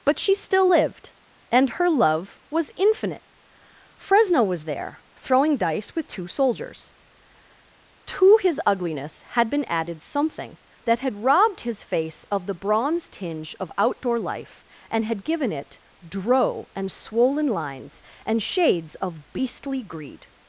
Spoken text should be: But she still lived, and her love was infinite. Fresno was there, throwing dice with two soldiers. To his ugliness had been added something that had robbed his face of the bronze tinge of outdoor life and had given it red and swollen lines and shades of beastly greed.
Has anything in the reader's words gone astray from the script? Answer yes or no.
yes